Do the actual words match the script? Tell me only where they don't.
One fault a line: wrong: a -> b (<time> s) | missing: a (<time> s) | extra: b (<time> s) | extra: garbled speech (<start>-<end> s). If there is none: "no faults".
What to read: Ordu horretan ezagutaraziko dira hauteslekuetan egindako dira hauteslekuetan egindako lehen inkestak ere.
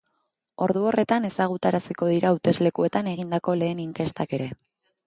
missing: dira hauteslekuetan egindako (3.6 s)